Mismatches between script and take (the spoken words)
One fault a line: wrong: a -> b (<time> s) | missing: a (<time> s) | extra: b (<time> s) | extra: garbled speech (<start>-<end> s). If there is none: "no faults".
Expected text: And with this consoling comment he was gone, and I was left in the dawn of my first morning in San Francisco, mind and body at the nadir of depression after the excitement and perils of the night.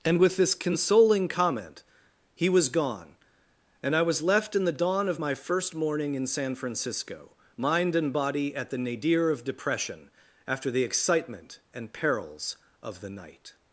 no faults